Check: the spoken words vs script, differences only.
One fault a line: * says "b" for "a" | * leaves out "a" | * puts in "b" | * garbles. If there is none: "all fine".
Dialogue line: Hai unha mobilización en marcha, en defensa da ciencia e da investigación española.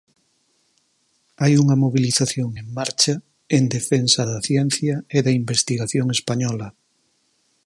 all fine